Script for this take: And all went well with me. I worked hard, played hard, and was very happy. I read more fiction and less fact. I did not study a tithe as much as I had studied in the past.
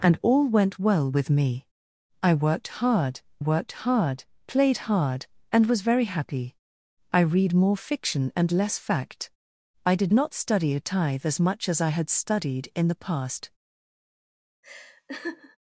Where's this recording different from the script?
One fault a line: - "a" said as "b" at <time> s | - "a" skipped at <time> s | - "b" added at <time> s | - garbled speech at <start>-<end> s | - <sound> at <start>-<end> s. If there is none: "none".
- "worked hard" added at 3.4 s
- laugh at 14.6-15.6 s